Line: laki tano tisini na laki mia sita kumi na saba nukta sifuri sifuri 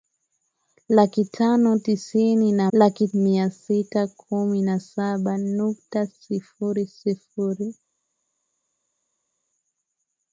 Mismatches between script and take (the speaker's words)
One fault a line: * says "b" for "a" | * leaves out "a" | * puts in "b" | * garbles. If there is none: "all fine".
all fine